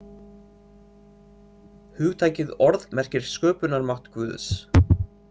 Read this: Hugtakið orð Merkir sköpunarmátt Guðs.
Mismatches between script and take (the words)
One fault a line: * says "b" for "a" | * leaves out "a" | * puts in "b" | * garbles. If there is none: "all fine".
all fine